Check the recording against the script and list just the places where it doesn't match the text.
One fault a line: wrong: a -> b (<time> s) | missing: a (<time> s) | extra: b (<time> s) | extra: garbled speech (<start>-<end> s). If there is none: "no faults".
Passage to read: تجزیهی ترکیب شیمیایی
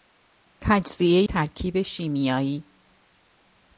no faults